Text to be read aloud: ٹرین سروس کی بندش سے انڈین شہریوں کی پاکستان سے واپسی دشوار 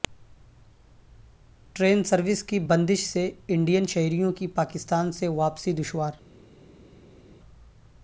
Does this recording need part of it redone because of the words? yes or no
no